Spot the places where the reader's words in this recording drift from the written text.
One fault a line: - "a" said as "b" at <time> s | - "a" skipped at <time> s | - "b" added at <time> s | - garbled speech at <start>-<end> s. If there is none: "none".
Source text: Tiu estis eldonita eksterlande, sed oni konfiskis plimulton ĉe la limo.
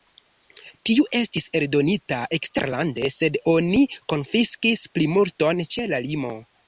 none